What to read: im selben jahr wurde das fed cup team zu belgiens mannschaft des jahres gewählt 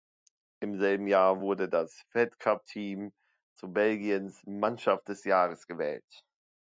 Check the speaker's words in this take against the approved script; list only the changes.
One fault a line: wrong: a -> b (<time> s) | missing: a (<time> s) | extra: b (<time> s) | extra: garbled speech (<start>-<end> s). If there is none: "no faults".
no faults